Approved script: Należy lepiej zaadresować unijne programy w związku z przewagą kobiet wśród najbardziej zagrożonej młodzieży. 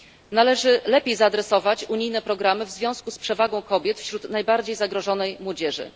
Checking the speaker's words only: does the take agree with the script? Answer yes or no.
yes